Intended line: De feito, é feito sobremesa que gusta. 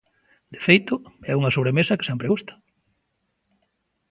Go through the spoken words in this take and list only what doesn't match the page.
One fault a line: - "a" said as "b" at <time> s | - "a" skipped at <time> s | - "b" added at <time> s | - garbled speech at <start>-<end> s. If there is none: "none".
- "feito" said as "unha" at 1.4 s
- "sempre" added at 2.1 s